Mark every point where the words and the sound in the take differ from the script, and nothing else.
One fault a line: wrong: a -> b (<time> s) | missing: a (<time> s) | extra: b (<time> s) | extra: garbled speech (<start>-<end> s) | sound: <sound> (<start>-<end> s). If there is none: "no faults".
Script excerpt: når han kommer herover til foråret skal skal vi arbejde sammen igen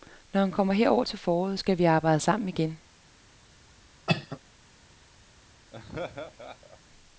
missing: skal (1.8 s)
sound: cough (4.1-4.4 s)
sound: laugh (5.7-6.8 s)